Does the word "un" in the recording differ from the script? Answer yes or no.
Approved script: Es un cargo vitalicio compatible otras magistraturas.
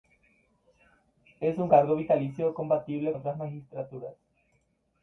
no